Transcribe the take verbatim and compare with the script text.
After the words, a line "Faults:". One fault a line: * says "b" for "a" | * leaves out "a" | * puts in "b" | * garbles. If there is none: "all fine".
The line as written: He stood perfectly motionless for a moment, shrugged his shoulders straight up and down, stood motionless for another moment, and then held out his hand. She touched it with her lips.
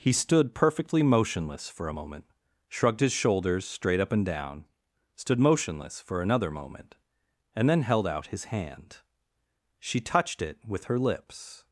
He stood perfectly motionless for a moment, shrugged his shoulders straight up and down, stood motionless for another moment, and then held out his hand. She touched it with her lips.
Faults:
all fine